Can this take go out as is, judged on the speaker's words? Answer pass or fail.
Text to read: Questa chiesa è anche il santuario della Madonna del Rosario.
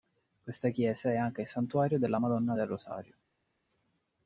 pass